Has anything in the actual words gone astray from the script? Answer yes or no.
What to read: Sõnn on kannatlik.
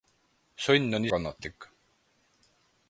no